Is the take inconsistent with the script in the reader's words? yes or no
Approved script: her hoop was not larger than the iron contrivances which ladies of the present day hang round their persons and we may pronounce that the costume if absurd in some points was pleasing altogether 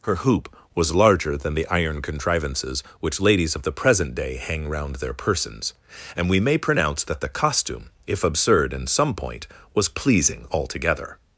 yes